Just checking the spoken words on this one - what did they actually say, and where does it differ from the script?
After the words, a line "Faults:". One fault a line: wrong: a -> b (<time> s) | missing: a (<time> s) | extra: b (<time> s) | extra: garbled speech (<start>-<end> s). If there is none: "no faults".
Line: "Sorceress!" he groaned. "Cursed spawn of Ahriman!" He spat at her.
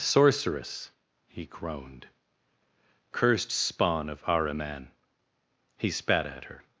"Sorceress!" he groaned. "Cursed spawn of Ahriman!" He spat at her.
Faults:
no faults